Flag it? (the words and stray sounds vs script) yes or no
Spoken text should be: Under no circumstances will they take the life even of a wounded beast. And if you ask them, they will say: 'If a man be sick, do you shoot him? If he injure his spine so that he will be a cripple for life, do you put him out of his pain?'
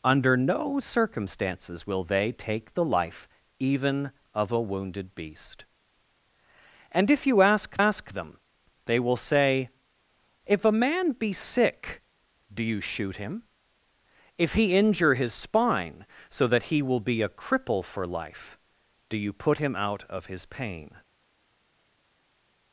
yes